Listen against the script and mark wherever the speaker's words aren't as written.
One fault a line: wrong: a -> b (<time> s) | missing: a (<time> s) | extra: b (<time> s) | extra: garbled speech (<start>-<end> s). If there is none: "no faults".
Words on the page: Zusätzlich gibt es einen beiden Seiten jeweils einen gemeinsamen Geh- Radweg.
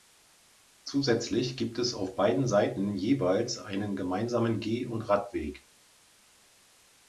wrong: einen -> auf (1.9 s)
extra: und (4.8 s)